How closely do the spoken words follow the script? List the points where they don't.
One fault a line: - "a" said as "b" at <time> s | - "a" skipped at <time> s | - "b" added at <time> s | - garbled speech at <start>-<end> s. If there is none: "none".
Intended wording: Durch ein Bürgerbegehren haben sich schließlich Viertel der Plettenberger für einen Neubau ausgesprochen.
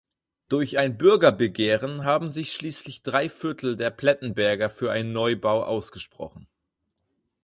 - "drei" added at 3.0 s